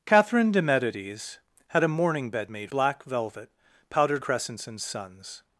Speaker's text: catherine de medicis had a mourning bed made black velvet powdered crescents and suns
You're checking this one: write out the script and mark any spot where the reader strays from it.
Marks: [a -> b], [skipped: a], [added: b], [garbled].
catherine de medicis had a mourning bed made black velvet powdered crescents and suns